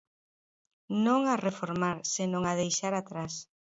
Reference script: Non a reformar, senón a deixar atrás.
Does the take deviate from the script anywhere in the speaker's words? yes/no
no